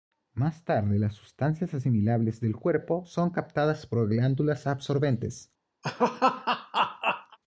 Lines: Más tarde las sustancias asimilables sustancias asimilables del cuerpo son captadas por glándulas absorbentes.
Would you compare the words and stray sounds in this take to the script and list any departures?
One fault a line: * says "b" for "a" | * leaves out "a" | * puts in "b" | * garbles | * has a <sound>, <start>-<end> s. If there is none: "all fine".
* leaves out "sustancias asimilables"
* has a laugh, 5.8-7.4 s